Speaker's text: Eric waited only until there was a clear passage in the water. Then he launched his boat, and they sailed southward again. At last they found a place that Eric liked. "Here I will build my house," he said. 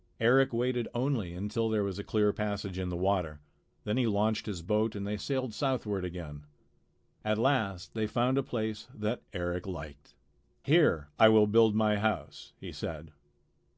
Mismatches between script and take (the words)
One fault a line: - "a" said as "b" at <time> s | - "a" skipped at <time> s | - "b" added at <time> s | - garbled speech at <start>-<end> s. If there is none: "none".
none